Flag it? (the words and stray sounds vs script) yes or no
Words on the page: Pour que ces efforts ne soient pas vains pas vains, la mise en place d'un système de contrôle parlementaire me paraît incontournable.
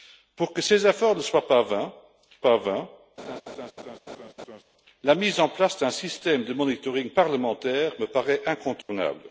yes